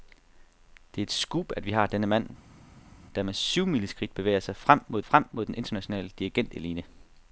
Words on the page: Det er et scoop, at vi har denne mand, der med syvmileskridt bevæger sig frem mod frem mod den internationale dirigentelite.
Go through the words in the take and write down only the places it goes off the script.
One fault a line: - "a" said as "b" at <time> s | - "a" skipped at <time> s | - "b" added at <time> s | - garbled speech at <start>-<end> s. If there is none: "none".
none